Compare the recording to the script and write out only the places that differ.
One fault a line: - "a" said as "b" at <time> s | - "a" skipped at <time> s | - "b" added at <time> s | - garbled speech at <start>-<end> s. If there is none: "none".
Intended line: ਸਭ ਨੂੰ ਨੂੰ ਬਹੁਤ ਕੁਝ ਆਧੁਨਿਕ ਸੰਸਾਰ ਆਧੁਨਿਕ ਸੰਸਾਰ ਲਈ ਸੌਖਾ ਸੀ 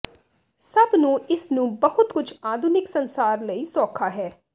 - "ਇਸ" added at 1.3 s
- "ਆਧੁਨਿਕ ਸੰਸਾਰ" skipped at 3.4 s
- "ਸੀ" said as "ਹੈ" at 4.1 s